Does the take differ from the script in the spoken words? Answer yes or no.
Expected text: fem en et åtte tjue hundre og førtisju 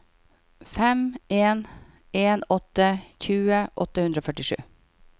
yes